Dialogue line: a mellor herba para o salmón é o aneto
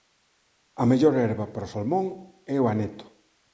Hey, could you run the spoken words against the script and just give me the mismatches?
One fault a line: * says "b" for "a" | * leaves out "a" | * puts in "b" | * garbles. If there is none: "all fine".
all fine